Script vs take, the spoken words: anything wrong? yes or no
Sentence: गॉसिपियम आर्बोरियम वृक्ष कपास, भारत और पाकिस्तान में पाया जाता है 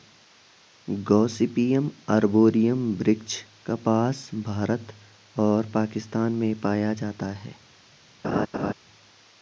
no